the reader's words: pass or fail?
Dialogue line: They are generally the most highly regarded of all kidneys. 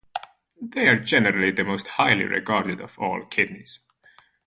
pass